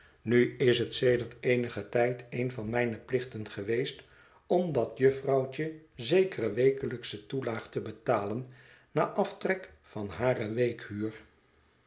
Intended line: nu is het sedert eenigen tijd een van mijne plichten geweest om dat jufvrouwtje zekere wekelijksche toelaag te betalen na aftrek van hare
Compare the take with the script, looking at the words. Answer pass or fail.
pass